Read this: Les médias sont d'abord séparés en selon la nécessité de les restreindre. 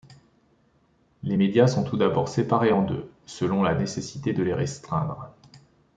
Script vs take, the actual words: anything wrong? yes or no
yes